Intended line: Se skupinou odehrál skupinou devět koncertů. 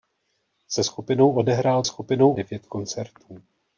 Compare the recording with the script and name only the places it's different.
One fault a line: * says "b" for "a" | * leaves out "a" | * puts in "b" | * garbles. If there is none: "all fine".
all fine